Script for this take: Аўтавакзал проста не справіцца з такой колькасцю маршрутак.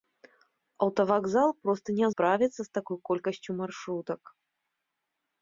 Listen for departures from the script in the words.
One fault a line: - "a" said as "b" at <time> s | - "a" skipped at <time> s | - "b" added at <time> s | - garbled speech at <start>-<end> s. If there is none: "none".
none